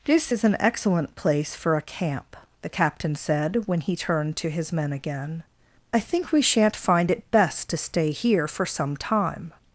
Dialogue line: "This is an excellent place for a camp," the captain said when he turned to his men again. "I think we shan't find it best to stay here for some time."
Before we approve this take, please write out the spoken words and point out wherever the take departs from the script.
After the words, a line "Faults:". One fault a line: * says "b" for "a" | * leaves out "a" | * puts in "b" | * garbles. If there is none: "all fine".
"This is an excellent place for a camp," the captain said when he turned to his men again. "I think we shan't find it best to stay here for some time."
Faults:
all fine